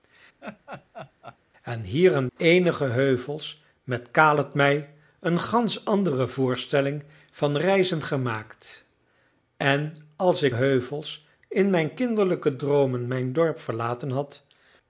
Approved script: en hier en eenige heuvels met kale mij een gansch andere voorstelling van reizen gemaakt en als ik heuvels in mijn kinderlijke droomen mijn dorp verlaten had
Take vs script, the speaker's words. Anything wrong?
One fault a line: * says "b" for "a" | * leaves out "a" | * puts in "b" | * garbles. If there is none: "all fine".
all fine